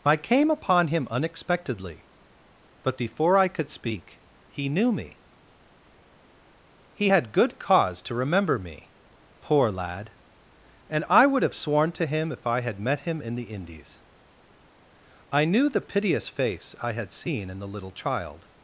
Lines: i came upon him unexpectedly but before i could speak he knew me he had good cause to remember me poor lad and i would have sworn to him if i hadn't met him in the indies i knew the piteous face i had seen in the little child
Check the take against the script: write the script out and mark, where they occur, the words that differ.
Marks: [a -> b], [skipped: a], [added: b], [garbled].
i came upon him unexpectedly but before i could speak he knew me he had good cause to remember me poor lad and i would have sworn to him if i [hadn't -> had] met him in the indies i knew the piteous face i had seen in the little child